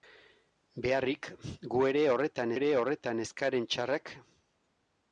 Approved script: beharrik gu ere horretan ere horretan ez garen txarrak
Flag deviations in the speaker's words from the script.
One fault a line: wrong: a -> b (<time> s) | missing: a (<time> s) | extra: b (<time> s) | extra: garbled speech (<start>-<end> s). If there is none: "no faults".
no faults